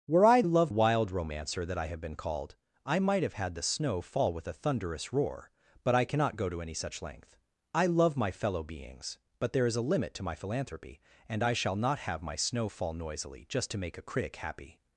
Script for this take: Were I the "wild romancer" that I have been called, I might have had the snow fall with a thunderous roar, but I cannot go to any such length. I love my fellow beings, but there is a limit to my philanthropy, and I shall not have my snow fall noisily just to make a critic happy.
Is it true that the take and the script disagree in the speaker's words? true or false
true